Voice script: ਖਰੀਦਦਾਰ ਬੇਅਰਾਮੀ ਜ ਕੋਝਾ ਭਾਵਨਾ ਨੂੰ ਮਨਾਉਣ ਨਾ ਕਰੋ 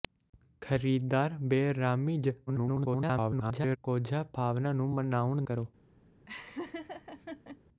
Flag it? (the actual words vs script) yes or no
yes